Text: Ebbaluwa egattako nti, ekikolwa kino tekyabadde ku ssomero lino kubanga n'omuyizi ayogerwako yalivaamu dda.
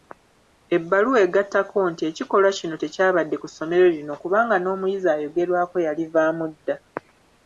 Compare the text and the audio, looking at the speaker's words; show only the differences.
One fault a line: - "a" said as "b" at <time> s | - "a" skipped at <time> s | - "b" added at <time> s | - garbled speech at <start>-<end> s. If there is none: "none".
none